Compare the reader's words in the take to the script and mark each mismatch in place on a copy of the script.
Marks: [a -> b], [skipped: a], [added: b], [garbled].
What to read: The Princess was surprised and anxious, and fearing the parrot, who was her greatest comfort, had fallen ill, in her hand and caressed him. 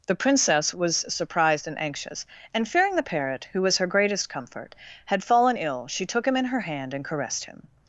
The Princess was surprised and anxious, and fearing the parrot, who was her greatest comfort, had fallen ill, [added: she took him] in her hand and caressed him.